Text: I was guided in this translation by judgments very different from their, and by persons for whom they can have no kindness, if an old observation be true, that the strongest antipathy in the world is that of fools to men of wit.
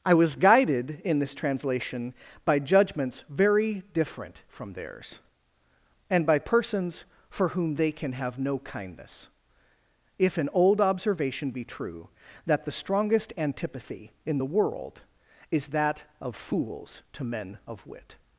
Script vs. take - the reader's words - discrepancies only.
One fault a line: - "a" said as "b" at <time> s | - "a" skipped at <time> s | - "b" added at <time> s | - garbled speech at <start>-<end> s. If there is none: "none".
- "their" said as "theirs" at 4.7 s